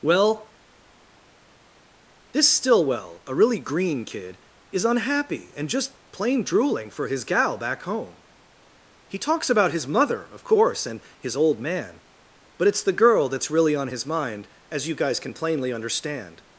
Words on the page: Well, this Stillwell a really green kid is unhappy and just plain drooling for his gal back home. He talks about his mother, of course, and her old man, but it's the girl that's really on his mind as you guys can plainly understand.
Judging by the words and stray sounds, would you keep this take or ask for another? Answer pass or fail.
fail